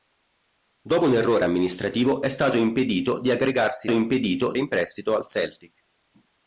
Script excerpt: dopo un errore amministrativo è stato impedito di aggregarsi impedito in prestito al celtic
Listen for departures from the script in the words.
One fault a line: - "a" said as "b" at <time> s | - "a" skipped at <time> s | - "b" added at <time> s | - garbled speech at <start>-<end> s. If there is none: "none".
none